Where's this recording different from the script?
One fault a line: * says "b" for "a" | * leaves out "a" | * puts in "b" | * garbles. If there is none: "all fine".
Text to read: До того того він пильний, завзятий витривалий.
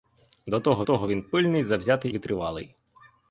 all fine